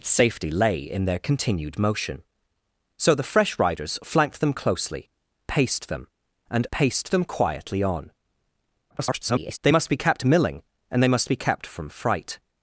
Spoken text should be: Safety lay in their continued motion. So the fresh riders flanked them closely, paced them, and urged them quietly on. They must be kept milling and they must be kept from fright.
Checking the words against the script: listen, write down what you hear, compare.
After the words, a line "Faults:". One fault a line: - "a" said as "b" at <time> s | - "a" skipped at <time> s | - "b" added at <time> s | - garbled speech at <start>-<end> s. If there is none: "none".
Safety lay in their continued motion. So the fresh riders flanked them closely, paced them, and paced them quietly on. [garbled] They must be kept milling and they must be kept from fright.
Faults:
- "urged" said as "paced" at 6.7 s
- garbled speech at 8.9-9.6 s